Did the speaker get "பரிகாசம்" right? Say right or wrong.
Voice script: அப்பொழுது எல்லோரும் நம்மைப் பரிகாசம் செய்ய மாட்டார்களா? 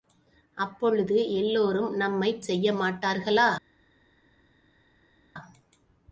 wrong